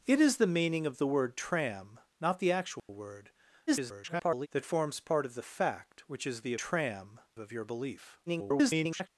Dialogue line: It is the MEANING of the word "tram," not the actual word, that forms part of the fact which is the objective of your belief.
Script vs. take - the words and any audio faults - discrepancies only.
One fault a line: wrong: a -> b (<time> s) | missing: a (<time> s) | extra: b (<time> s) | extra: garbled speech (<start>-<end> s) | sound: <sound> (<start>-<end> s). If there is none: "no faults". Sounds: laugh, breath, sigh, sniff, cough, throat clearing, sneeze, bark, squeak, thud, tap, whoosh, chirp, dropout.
sound: dropout (2.8-2.9 s)
extra: garbled speech (3.7-4.5 s)
wrong: objective -> tram (6.6 s)
extra: garbled speech (8.3-9.1 s)